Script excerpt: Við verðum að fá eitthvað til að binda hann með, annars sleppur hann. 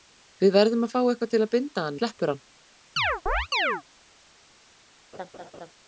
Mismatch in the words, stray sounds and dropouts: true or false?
true